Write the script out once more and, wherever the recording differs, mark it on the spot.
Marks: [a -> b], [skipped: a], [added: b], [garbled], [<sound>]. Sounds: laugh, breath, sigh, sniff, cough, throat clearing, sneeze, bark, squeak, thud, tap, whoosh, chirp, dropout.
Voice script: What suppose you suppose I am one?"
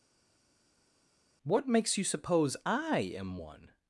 What [suppose -> makes] you suppose I am one?"